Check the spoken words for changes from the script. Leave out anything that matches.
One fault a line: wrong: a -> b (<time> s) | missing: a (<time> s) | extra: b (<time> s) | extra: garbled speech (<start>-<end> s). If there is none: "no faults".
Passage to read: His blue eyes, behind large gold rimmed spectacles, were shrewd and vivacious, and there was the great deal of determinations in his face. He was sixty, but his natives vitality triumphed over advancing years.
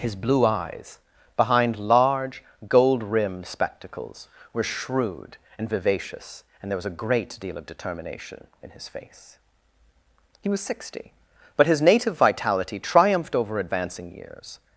wrong: the -> a (6.8 s)
wrong: determinations -> determination (7.7 s)
wrong: natives -> native (11.8 s)